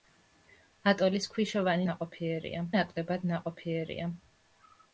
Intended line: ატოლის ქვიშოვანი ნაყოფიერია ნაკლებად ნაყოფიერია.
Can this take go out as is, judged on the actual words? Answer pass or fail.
pass